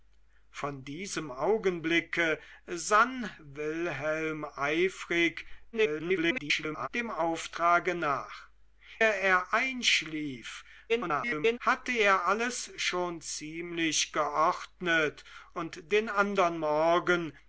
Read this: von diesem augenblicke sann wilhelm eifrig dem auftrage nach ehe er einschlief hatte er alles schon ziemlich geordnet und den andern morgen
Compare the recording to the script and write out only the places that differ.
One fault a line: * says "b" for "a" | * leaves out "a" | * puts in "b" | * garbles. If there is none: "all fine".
* garbles
* leaves out "ehe"
* garbles